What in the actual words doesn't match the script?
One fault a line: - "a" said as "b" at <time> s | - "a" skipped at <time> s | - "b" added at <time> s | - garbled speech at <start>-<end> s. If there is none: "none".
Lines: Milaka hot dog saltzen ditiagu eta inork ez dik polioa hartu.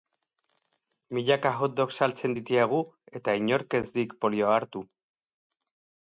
none